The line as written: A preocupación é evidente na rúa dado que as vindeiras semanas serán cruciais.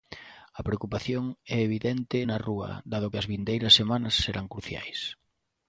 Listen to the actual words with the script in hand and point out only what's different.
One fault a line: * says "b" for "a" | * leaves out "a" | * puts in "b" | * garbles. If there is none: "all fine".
all fine